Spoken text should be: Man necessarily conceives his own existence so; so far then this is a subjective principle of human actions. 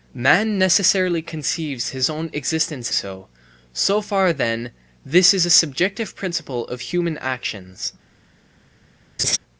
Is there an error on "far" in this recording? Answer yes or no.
no